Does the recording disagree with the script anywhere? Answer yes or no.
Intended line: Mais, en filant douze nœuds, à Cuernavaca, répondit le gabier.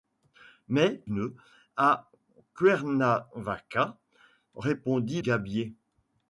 yes